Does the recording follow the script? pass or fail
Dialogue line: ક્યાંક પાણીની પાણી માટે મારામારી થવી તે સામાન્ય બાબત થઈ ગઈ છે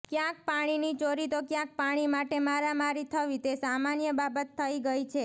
fail